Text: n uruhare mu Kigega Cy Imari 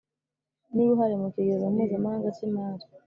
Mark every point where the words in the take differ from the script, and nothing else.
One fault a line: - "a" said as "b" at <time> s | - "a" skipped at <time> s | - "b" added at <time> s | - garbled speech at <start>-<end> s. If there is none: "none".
- "Mpuzamahanga" added at 1.7 s